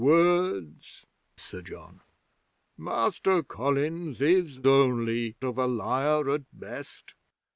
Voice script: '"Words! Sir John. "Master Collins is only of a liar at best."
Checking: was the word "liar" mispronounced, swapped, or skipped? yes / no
no